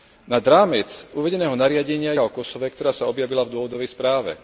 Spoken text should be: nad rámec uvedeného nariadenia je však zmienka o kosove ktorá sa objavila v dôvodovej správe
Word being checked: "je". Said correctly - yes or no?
no